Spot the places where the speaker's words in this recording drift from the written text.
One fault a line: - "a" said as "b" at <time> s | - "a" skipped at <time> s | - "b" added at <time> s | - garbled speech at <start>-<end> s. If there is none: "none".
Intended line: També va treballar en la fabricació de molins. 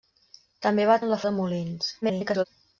- "treballar" skipped at 0.9 s
- "fabricació" skipped at 1.2 s
- garbled speech at 2.0-2.5 s